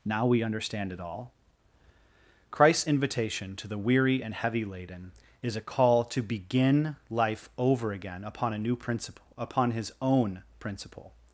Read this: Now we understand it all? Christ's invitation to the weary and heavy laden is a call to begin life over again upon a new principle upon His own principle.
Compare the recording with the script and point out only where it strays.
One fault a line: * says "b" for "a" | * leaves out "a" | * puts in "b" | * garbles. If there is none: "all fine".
all fine